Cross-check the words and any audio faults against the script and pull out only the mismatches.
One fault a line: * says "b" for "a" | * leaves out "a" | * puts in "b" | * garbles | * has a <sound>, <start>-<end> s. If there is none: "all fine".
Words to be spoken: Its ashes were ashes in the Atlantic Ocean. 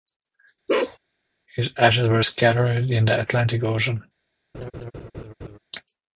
* has a bark, 0.7-1.0 s
* says "His" for "Its"
* says "scattered" for "ashes"
* has a laugh, 4.5-5.6 s